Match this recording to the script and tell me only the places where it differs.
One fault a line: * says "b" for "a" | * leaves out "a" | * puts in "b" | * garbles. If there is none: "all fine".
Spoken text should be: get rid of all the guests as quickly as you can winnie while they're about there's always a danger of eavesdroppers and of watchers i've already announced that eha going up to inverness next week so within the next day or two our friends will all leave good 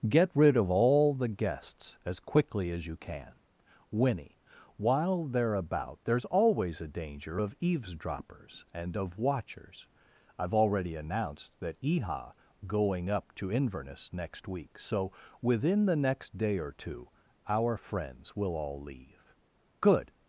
all fine